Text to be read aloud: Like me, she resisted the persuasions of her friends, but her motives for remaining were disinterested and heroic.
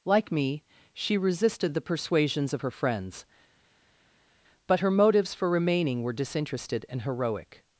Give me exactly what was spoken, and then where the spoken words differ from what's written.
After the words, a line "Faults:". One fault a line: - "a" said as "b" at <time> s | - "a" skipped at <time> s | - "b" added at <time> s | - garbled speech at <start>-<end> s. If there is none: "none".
Like me, she resisted the persuasions of her friends, but her motives for remaining were disinterested and heroic.
Faults:
none